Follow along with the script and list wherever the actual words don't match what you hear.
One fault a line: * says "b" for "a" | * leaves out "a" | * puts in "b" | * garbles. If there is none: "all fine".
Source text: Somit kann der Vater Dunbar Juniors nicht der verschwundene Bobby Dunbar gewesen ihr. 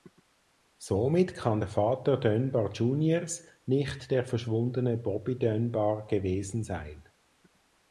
* says "sein" for "ihr"